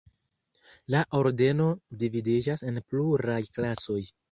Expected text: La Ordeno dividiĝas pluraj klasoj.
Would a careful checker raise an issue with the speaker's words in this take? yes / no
yes